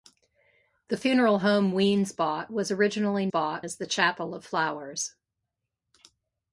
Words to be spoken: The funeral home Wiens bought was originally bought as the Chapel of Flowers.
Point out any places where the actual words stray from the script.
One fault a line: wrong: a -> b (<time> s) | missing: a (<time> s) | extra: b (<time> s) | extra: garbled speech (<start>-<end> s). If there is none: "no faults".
no faults